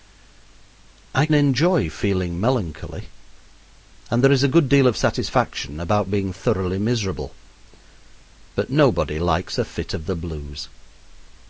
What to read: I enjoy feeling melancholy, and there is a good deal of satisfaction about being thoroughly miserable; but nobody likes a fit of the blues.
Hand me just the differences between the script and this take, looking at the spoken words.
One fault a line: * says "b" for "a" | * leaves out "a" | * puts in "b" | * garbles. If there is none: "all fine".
all fine